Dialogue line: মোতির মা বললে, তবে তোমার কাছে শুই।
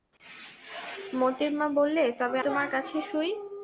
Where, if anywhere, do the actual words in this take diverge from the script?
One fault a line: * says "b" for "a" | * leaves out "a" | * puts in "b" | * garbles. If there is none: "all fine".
all fine